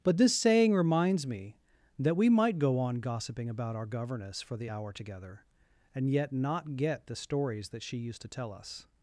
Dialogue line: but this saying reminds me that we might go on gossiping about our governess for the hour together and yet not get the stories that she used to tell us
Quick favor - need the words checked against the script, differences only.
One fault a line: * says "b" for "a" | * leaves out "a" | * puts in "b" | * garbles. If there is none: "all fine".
all fine